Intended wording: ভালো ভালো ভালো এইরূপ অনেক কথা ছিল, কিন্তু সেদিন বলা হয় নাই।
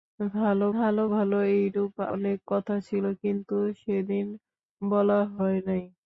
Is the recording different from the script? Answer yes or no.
no